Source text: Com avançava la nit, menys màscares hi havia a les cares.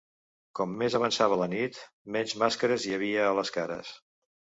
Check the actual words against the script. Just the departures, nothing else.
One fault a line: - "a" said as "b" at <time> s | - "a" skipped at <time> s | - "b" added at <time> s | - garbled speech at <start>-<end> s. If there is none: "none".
- "més" added at 0.8 s